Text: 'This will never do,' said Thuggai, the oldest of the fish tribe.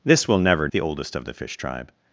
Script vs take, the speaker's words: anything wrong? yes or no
yes